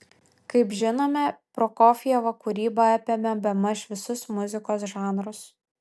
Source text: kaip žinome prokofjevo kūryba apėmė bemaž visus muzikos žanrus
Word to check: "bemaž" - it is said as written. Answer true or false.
true